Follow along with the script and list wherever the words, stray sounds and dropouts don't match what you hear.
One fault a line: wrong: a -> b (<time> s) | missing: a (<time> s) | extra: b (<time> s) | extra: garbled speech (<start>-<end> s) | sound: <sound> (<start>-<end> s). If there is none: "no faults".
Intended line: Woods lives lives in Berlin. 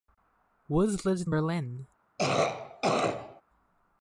missing: lives (1.3 s)
sound: cough (2.2-3.4 s)